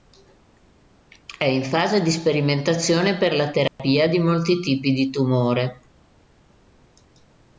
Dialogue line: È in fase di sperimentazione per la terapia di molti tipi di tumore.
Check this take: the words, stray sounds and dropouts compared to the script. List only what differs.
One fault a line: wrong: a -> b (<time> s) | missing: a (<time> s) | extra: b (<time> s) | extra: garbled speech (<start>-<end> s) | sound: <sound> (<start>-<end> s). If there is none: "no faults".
sound: dropout (3.7-3.8 s)